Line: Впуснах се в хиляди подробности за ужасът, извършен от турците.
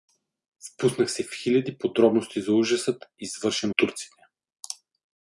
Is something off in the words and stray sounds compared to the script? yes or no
yes